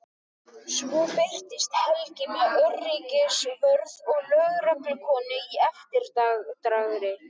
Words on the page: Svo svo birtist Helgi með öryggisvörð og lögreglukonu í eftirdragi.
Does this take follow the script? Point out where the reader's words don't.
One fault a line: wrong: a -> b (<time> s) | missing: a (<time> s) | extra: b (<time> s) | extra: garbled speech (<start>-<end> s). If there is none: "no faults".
missing: svo (1.0 s)